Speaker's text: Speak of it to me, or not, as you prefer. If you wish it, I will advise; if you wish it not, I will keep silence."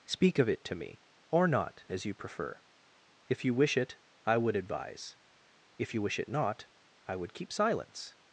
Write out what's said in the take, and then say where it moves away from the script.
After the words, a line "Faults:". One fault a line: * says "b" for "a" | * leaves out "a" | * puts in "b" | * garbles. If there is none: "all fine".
Speak of it to me, or not, as you prefer. If you wish it, I would advise; if you wish it not, I would keep silence."
Faults:
* says "would" for "will"
* says "would" for "will"